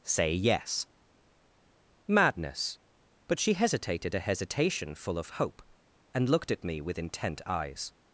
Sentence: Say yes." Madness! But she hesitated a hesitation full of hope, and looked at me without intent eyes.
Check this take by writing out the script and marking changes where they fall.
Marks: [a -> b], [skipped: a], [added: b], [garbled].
Say yes." Madness! But she hesitated a hesitation full of hope, and looked at me [without -> with] intent eyes.